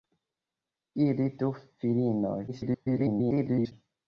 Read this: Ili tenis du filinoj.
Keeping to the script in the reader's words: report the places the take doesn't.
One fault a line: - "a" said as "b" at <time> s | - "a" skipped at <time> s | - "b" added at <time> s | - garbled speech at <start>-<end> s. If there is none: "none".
- "tenis" skipped at 1.3 s
- garbled speech at 2.5-3.7 s